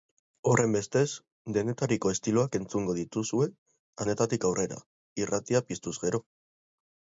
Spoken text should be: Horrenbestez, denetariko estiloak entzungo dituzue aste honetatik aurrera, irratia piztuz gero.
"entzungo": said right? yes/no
yes